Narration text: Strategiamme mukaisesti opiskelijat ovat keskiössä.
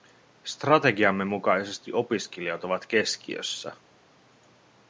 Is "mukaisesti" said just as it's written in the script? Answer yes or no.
yes